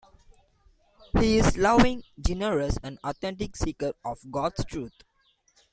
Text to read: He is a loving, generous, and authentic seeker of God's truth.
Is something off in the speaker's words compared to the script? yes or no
no